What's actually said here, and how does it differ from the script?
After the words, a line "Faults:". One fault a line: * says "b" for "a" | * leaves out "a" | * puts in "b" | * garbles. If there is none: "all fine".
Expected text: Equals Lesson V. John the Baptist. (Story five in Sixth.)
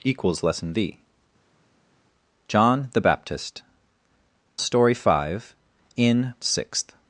Equals Lesson V. John the Baptist. (Story five in Sixth.)
Faults:
all fine